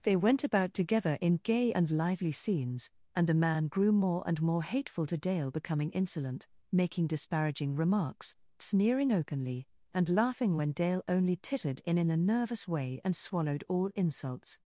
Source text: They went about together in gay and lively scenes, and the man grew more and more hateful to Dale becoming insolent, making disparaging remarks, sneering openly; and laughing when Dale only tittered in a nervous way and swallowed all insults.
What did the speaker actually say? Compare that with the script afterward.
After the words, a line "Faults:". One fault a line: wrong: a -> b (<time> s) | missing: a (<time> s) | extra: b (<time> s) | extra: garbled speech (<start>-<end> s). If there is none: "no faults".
They went about together in gay and lively scenes, and the man grew more and more hateful to Dale becoming insolent, making disparaging remarks, sneering openly; and laughing when Dale only tittered in in a nervous way and swallowed all insults.
Faults:
extra: in (12.0 s)